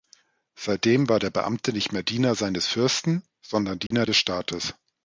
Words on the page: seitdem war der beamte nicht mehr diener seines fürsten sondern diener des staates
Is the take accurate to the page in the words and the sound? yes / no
no